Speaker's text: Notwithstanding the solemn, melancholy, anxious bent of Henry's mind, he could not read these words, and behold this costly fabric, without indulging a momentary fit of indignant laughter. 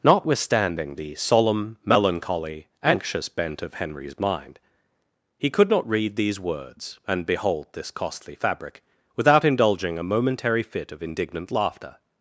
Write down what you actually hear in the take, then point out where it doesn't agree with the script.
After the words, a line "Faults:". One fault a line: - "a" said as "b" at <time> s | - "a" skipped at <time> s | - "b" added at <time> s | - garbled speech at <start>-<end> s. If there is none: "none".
Notwithstanding the solemn, melancholy, anxious bent of Henry's mind, he could not read these words, and behold this costly fabric, without indulging a momentary fit of indignant laughter.
Faults:
none